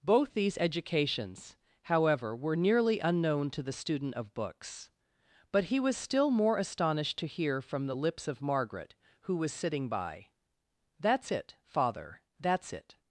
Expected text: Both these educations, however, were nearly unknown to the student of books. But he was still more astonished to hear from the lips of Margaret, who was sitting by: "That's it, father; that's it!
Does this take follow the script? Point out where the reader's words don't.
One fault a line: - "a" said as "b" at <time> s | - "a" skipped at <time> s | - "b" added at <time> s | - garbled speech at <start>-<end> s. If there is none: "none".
none